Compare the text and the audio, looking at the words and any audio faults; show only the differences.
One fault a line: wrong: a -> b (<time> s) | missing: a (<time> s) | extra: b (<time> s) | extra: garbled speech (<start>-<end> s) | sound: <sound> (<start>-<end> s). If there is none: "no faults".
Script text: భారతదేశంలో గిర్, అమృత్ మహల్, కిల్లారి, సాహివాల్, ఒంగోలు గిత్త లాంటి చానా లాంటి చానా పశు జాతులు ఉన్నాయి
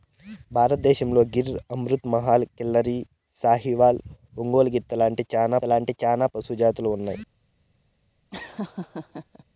sound: laugh (8.3-9.4 s)